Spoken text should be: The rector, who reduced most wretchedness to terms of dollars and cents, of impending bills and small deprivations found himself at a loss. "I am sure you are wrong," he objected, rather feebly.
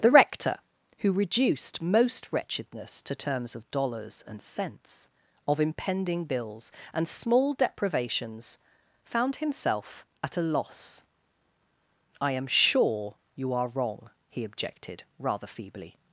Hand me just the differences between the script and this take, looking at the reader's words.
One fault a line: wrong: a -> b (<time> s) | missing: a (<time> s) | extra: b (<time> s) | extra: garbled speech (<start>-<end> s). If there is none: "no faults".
no faults